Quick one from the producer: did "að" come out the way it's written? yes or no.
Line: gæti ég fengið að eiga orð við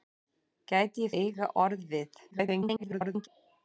no